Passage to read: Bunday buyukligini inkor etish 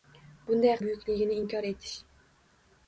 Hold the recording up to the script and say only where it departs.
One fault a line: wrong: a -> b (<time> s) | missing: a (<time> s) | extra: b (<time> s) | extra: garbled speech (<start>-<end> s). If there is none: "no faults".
no faults